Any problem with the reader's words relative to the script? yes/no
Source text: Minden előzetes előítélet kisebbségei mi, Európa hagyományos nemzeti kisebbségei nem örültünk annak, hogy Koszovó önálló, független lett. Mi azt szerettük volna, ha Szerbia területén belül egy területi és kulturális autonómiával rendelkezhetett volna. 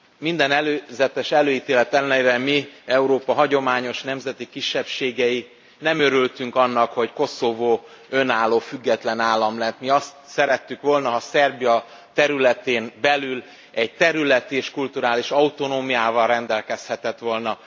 yes